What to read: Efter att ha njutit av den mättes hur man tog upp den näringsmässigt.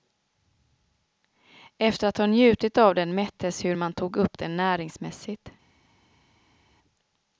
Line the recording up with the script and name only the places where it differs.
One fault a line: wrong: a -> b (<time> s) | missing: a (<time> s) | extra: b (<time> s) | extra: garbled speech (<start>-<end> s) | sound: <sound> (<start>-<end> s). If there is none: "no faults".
no faults